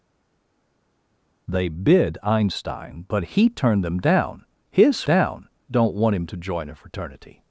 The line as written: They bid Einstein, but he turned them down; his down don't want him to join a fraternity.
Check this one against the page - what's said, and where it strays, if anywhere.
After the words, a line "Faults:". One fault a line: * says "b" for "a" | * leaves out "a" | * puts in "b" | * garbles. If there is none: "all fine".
They bid Einstein, but he turned them down; his down don't want him to join a fraternity.
Faults:
all fine